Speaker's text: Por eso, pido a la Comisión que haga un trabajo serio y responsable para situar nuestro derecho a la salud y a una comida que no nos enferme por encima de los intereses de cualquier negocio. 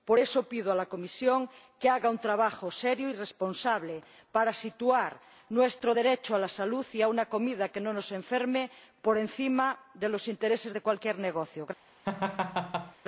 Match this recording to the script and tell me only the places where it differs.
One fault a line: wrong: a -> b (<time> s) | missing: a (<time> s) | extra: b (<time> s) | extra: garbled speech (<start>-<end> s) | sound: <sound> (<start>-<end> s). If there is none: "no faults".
sound: laugh (12.0-13.0 s)